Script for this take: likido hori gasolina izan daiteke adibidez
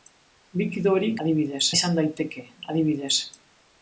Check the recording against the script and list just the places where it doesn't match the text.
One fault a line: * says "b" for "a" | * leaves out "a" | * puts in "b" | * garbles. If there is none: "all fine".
* says "adibidez" for "gasolina"